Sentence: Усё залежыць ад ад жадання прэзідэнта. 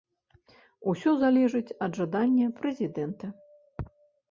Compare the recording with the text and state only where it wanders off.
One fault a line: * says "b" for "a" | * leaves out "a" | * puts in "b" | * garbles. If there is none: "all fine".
* leaves out "ад"